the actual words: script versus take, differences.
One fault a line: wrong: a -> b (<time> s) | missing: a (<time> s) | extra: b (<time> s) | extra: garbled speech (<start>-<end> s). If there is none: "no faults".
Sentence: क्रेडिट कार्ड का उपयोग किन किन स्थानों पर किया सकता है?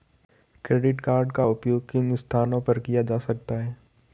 missing: किन (2.1 s)
extra: जा (3.0 s)